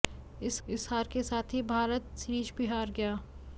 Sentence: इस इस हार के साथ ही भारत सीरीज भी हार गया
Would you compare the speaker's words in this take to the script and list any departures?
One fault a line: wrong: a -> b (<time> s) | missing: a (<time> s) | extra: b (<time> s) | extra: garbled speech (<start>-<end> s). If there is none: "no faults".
no faults